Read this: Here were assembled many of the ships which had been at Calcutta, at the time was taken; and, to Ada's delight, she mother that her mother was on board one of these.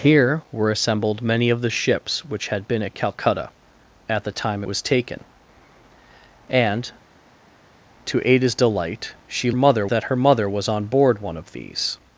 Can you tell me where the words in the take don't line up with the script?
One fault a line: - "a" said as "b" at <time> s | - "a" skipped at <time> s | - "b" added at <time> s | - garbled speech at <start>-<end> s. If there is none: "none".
none